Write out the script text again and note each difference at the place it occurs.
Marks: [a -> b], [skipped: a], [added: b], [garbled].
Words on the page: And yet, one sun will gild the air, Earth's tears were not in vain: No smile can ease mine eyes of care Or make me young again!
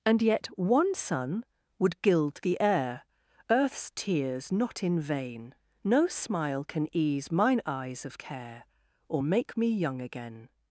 And yet, one sun [will -> would] gild the air, Earth's tears [skipped: were] not in vain: No smile can ease mine eyes of care Or make me young again!